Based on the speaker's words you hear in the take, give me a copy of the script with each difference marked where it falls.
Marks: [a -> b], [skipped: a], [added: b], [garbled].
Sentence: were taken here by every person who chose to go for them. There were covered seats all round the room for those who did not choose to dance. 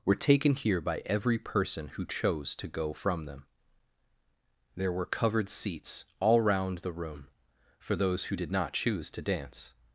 were taken here by every person who chose to go [for -> from] them. There were covered seats all round the room for those who did not choose to dance.